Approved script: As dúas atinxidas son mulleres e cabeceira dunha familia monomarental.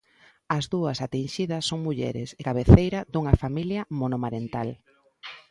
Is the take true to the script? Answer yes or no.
yes